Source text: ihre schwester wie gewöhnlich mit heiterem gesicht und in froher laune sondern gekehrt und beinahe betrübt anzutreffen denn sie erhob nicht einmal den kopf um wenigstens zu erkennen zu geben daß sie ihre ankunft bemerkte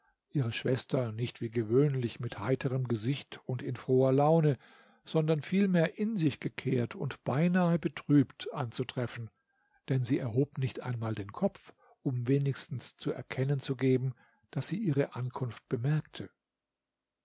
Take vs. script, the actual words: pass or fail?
fail